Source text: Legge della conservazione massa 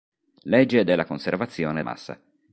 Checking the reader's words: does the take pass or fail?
pass